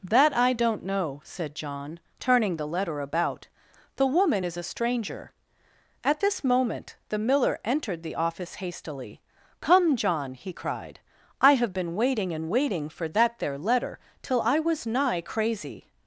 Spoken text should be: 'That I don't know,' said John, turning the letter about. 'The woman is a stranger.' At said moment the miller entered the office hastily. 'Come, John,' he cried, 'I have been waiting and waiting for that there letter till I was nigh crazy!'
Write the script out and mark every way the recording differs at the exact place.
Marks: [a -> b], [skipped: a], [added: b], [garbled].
'That I don't know,' said John, turning the letter about. 'The woman is a stranger.' At [said -> this] moment the miller entered the office hastily. 'Come, John,' he cried, 'I have been waiting and waiting for that there letter till I was nigh crazy!'